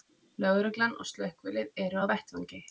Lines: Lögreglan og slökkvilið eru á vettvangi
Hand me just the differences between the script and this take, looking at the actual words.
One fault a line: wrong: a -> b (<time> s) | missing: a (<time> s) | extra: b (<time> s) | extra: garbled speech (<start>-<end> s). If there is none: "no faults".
no faults